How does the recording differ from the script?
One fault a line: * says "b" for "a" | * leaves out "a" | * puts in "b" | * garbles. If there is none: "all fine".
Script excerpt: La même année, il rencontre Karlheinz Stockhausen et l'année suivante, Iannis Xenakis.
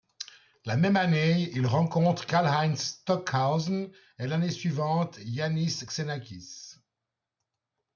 all fine